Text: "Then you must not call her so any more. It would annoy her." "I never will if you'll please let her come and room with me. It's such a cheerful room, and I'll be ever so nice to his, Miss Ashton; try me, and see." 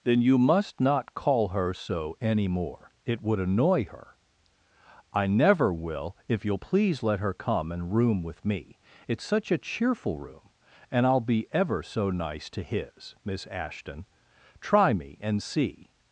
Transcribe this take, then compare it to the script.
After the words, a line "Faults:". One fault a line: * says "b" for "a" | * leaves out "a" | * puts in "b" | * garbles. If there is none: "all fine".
"Then you must not call her so any more. It would annoy her." "I never will if you'll please let her come and room with me. It's such a cheerful room, and I'll be ever so nice to his, Miss Ashton; try me, and see."
Faults:
all fine